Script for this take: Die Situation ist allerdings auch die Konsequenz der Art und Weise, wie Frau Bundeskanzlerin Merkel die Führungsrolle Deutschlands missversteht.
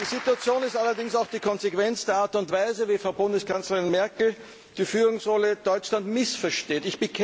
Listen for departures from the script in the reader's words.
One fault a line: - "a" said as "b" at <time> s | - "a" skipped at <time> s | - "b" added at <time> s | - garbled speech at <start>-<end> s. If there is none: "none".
none